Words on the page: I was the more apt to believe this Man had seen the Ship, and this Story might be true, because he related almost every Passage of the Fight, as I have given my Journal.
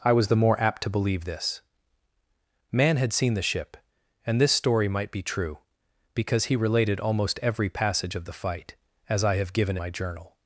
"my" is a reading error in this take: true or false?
false